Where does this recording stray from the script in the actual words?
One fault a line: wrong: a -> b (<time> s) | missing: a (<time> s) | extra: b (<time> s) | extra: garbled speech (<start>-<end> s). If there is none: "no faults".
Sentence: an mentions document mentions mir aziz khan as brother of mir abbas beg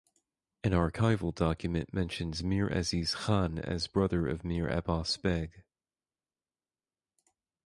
wrong: mentions -> archival (0.7 s)